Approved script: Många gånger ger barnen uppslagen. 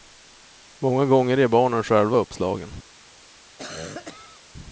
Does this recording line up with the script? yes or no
no